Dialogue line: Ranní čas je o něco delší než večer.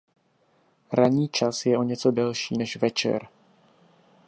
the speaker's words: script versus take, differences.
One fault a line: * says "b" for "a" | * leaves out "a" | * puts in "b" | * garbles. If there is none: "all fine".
all fine